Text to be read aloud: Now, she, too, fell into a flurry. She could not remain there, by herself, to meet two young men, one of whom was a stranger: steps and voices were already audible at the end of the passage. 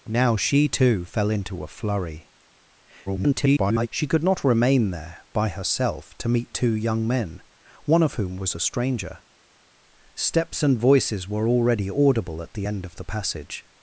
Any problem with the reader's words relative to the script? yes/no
yes